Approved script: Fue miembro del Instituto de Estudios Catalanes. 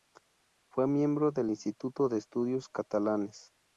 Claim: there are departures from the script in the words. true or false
false